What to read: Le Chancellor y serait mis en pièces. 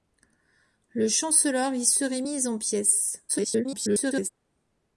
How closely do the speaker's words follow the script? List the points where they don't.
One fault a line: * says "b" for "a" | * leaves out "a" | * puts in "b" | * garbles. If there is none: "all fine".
* garbles